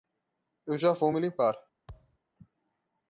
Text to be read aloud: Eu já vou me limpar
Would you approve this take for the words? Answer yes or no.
yes